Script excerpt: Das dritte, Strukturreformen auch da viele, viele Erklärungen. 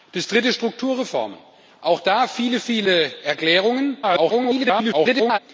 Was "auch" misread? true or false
false